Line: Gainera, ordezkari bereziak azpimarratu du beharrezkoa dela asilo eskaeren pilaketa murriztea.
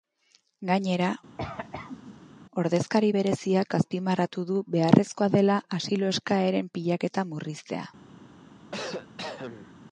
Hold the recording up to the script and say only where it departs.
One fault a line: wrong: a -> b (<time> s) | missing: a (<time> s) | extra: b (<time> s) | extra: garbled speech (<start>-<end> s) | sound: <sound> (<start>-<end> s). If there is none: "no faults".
sound: cough (1.4-2.3 s)
sound: cough (8.7-9.7 s)